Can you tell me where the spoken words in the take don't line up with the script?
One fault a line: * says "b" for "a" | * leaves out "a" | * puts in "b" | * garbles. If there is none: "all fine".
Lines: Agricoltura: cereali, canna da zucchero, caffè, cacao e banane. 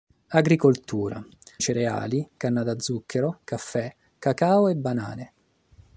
all fine